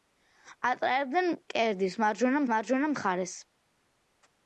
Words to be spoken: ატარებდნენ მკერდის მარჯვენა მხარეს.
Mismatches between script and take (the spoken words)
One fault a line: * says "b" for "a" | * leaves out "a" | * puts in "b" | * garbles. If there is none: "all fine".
* puts in "მარჯვენა"